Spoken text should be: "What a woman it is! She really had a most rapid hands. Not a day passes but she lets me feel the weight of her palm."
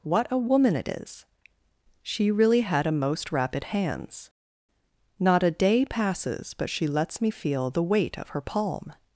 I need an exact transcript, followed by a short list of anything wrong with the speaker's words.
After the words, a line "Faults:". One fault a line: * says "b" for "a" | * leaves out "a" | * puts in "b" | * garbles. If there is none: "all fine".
"What a woman it is! She really had a most rapid hands. Not a day passes but she lets me feel the weight of her palm."
Faults:
all fine